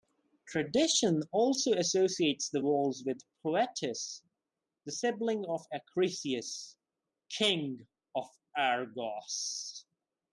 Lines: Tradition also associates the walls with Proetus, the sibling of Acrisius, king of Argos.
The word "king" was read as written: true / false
true